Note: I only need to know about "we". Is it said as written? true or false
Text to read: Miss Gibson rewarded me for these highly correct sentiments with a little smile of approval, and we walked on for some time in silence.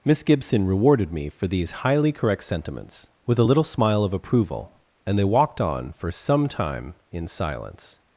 false